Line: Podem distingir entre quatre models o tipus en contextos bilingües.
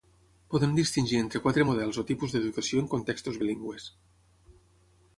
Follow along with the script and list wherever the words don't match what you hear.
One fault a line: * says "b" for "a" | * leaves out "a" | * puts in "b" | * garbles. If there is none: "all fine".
* puts in "d'educació"